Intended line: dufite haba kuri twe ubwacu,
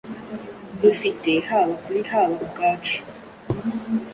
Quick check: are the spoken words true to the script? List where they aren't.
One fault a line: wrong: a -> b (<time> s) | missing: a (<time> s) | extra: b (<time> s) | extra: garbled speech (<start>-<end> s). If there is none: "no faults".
wrong: twe -> haba (2.1 s)